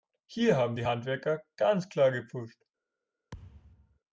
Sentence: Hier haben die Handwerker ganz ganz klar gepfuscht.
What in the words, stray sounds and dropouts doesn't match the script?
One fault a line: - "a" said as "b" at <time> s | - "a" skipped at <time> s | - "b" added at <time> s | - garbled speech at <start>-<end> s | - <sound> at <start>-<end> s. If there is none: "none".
- "ganz" skipped at 1.9 s
- thud at 3.3-4.0 s